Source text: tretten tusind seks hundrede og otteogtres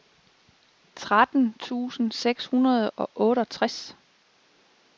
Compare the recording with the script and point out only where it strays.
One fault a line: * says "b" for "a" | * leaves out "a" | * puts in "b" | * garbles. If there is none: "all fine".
all fine